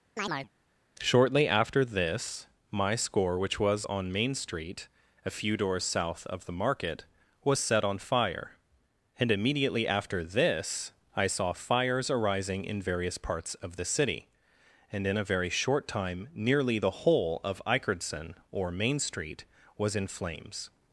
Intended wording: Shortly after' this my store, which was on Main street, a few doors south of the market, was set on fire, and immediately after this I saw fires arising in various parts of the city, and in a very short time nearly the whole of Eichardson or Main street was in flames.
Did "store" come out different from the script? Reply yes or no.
yes